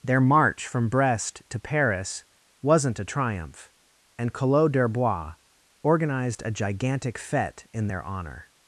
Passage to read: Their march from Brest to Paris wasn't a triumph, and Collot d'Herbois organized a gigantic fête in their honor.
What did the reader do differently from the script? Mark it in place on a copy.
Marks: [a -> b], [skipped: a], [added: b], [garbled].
Their march from Brest to Paris wasn't a triumph, and Collot d'Herbois organized a gigantic fête in their honor.